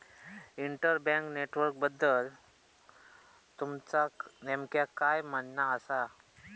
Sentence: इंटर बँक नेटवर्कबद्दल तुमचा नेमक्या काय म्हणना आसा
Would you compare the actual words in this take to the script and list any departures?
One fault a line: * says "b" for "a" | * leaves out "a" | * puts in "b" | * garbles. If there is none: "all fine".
all fine